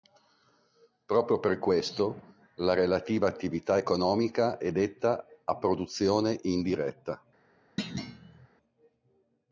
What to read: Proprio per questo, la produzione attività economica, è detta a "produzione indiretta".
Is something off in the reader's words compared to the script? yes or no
yes